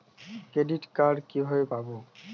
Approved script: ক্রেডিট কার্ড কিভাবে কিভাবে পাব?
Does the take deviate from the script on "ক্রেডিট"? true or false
false